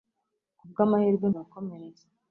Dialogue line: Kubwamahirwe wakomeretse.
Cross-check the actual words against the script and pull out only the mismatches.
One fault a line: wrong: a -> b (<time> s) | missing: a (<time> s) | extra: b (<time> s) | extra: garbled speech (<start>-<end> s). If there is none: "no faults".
no faults